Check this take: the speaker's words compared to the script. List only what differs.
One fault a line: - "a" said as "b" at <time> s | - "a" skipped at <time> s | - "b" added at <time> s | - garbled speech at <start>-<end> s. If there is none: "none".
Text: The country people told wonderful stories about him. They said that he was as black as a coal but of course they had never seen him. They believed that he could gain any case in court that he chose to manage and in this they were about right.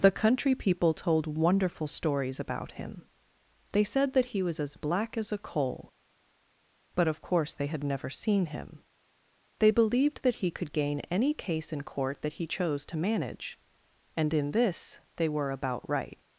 none